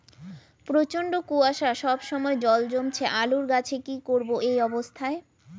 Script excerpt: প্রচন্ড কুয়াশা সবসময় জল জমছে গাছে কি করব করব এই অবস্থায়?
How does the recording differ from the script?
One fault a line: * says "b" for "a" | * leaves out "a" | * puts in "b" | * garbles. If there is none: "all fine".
* puts in "আলুর"
* leaves out "করব"